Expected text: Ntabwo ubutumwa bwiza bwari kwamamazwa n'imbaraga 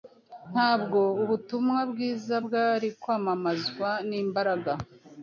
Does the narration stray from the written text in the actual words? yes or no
no